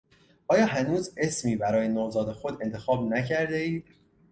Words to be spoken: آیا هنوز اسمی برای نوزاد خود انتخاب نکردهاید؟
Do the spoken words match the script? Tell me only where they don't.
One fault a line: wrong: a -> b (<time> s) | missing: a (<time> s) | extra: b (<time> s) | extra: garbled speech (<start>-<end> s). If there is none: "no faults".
no faults